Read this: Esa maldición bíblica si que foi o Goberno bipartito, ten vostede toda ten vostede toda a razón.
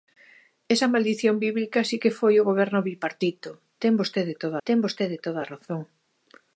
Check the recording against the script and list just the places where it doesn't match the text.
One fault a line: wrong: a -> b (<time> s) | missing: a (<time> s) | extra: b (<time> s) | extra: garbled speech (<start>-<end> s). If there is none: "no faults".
no faults